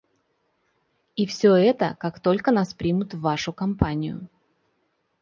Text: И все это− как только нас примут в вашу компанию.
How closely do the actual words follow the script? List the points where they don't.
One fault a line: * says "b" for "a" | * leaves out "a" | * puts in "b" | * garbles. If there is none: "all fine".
all fine